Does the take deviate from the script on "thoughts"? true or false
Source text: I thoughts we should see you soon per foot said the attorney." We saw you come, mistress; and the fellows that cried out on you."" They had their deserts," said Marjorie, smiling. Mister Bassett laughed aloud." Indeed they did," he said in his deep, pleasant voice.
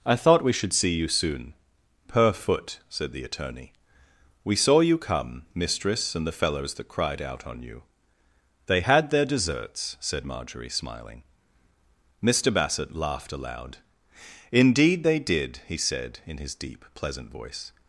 true